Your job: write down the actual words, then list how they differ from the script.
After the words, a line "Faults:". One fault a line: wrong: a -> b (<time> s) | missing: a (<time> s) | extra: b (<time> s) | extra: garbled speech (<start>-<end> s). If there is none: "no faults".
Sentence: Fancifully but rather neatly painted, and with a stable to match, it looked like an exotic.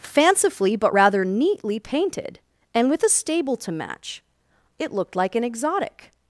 Fancifully but rather neatly painted, and with a stable to match, it looked like an exotic.
Faults:
no faults